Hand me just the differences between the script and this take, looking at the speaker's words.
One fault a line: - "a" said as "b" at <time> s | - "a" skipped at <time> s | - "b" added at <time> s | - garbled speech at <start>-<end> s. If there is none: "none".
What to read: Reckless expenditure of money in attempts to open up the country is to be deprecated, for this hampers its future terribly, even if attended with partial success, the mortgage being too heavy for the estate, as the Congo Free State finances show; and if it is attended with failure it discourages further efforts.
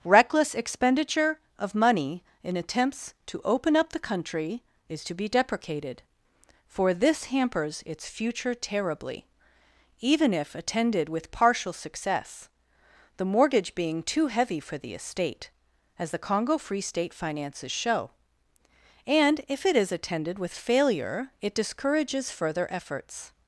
none